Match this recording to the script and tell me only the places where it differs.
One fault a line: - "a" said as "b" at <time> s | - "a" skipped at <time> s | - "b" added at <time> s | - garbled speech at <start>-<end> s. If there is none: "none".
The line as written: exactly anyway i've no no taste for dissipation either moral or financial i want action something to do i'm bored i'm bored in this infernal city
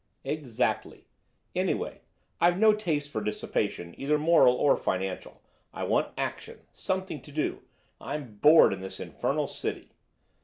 - "no" skipped at 2.7 s
- "i'm bored" skipped at 8.7 s